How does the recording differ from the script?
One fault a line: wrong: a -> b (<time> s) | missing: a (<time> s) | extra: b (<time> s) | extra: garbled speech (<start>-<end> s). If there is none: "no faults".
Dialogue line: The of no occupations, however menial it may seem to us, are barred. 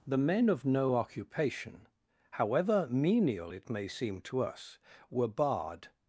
extra: men (0.2 s)
wrong: occupations -> occupation (0.9 s)
wrong: are -> were (5.1 s)